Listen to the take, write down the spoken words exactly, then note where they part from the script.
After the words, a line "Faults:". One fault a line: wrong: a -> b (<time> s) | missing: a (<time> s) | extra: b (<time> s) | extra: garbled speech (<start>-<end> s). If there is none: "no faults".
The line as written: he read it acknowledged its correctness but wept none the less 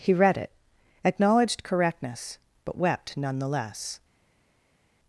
he read it acknowledged correctness but wept none the less
Faults:
missing: its (1.6 s)